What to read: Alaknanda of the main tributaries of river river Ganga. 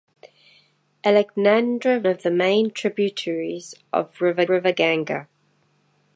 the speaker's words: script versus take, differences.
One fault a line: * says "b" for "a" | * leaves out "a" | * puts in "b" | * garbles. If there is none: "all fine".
all fine